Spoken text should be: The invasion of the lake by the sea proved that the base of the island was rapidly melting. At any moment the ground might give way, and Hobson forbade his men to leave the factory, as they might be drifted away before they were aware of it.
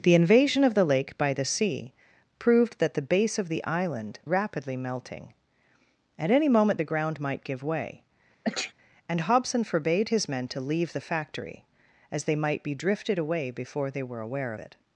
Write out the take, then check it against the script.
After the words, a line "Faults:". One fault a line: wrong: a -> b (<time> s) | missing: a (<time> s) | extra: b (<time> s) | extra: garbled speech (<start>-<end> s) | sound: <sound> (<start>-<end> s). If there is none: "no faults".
The invasion of the lake by the sea proved that the base of the island rapidly melting. At any moment the ground might give way, and Hobson forbade his men to leave the factory, as they might be drifted away before they were aware it.
Faults:
missing: was (4.2 s)
sound: sneeze (8.4-8.7 s)
missing: of (14.5 s)